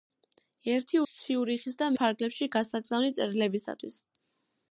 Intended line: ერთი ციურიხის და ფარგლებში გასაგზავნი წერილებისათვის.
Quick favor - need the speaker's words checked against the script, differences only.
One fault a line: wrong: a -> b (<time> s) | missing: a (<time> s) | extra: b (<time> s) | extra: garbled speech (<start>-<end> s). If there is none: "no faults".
no faults